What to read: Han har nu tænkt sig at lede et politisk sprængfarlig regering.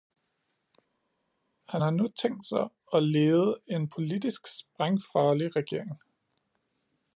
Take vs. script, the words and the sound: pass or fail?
fail